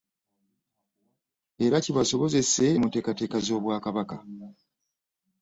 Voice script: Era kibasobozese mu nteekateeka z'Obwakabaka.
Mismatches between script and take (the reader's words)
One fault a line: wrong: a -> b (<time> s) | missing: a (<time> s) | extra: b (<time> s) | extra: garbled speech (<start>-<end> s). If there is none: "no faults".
no faults